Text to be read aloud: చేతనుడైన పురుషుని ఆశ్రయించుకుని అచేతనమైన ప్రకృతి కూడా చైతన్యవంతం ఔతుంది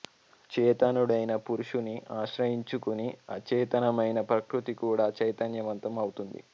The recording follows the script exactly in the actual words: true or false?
true